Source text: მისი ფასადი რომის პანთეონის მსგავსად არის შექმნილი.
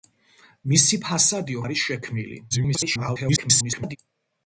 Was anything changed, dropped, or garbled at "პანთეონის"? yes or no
yes